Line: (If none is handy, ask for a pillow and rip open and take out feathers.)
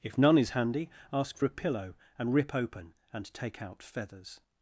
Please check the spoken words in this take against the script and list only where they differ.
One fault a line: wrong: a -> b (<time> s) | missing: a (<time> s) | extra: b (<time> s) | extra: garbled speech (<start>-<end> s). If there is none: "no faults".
no faults